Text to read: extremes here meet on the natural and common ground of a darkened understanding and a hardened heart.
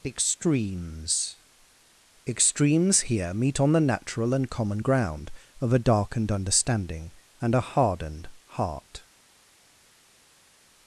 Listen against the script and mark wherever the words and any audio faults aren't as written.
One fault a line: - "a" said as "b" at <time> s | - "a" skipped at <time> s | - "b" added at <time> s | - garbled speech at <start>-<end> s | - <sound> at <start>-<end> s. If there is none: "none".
- "extremes" added at 2.2 s